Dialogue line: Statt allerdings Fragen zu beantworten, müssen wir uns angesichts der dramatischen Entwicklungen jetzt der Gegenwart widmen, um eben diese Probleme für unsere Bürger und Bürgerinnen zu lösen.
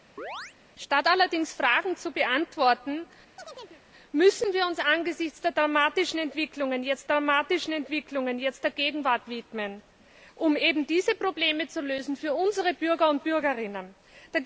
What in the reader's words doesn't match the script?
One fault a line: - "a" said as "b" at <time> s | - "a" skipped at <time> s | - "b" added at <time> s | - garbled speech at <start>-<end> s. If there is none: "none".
- "dramatischen Entwicklungen jetzt" added at 7.0 s